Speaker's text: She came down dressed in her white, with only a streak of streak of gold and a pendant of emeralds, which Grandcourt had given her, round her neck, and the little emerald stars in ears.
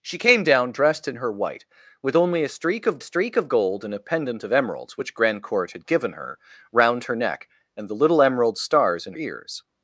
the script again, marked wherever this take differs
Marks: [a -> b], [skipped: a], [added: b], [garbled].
She came down dressed in her white, with only a streak of streak of gold and a pendant of emeralds, which Grandcourt had given her, round her neck, and the little emerald stars in ears.